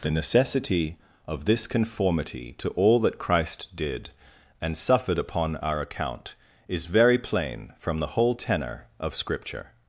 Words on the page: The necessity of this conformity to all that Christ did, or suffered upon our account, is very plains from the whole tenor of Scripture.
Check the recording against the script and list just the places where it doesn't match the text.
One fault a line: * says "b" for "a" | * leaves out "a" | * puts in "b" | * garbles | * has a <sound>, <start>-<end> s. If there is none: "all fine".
* says "and" for "or"
* says "plain" for "plains"